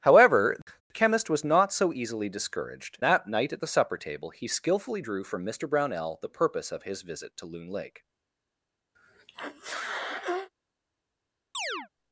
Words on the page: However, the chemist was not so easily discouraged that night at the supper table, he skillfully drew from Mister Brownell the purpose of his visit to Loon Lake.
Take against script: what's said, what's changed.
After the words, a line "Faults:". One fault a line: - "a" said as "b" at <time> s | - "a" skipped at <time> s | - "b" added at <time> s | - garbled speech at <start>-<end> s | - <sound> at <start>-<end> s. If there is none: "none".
However, the chemist was not so easily discouraged that night at the supper table, he skillfully drew from Mister Brownell the purpose of his visit to Loon Lake.
Faults:
- sneeze at 8.9-10.5 s
- chirp at 11.5-11.9 s